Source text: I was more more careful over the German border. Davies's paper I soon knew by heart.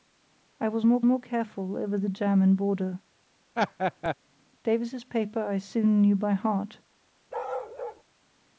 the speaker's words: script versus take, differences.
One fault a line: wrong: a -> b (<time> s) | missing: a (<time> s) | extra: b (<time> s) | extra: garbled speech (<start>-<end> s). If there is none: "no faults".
no faults